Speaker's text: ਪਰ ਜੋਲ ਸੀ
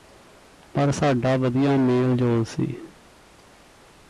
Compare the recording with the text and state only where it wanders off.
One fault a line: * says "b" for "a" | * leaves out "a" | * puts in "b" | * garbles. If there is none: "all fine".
* puts in "ਸਾਡਾ ਵਧੀਆ ਮੇਲ"